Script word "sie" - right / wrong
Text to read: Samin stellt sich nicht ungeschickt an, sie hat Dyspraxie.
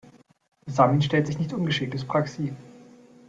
wrong